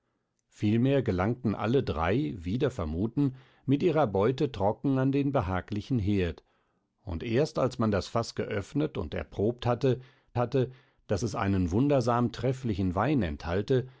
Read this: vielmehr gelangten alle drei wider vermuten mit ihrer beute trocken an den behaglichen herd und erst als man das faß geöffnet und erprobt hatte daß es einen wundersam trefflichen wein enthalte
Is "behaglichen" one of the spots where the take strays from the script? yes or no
no